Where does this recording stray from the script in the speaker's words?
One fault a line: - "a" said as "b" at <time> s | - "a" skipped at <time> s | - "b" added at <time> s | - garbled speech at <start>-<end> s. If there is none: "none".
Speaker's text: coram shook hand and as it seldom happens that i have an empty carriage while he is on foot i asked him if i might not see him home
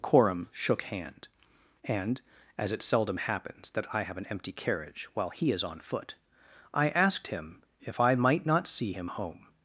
none